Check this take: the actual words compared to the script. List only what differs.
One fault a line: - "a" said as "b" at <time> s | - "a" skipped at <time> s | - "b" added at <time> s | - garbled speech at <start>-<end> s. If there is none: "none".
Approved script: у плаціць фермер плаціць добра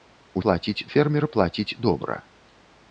none